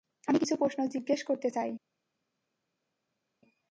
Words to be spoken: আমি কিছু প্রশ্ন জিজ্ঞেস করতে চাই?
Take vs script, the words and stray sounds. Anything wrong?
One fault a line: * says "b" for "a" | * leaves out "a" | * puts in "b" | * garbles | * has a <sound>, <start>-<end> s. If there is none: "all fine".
all fine